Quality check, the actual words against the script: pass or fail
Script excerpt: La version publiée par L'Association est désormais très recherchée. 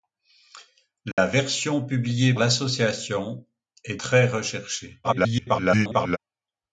fail